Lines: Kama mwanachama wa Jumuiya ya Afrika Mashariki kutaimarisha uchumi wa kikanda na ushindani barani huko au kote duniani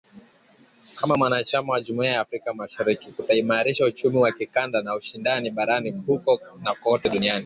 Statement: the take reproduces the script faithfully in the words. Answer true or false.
false